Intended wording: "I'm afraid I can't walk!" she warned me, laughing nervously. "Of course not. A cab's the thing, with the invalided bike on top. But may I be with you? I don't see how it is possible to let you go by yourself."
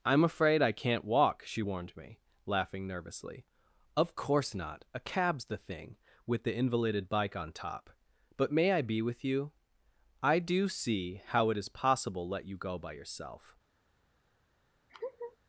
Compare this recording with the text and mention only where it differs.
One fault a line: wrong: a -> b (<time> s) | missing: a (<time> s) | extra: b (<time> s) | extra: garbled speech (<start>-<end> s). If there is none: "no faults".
wrong: don't -> do (10.4 s)
missing: to (12.3 s)